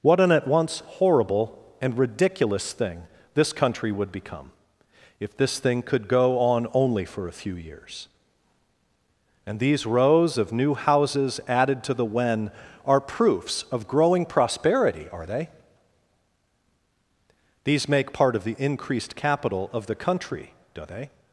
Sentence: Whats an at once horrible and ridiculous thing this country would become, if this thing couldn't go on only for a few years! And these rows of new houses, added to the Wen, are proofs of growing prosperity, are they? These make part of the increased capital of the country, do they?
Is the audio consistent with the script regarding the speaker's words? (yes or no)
no